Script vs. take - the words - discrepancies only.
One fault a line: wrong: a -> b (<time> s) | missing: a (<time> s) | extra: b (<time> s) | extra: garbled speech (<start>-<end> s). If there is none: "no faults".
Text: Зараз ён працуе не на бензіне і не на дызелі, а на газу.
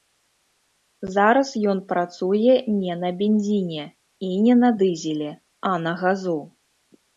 no faults